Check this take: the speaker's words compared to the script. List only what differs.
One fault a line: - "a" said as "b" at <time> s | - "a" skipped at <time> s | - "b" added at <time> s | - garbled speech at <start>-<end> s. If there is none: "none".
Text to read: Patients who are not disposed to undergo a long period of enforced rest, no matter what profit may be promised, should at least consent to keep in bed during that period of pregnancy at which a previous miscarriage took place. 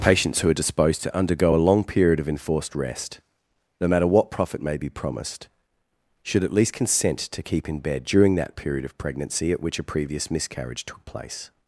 - "not" skipped at 0.5 s